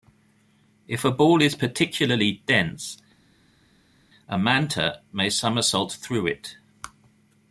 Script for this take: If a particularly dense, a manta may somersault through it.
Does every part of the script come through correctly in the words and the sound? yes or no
no